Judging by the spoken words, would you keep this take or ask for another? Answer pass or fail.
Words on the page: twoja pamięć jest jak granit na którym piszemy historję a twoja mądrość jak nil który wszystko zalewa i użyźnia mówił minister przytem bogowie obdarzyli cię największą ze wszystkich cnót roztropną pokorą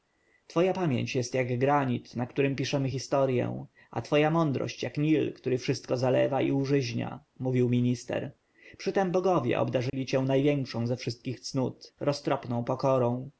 pass